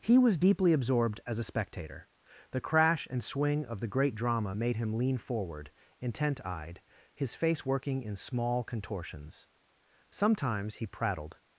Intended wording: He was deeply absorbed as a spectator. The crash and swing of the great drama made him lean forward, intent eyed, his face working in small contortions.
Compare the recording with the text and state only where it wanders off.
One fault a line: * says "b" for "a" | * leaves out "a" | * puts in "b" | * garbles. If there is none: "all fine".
* puts in "Sometimes he prattled"